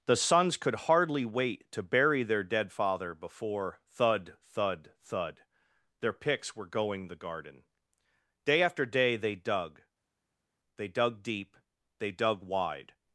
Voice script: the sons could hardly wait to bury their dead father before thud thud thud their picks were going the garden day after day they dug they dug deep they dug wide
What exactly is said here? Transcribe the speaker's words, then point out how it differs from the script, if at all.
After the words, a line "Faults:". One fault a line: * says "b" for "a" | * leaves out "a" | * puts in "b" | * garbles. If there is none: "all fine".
the sons could hardly wait to bury their dead father before thud thud thud their picks were going the garden day after day they dug they dug deep they dug wide
Faults:
all fine